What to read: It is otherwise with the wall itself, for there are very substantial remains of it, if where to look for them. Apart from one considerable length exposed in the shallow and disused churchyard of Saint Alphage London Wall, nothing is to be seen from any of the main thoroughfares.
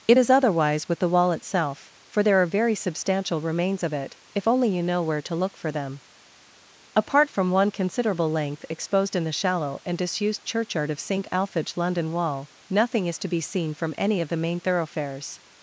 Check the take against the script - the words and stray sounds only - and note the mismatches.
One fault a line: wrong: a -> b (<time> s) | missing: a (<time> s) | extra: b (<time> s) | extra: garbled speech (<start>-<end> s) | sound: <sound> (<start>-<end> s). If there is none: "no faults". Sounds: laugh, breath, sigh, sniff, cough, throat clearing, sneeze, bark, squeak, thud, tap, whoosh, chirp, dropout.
extra: only you know (4.5 s)